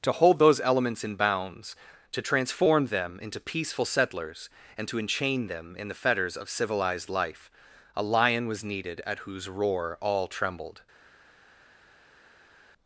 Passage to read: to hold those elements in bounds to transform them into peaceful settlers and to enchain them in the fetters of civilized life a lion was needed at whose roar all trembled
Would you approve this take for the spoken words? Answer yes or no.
yes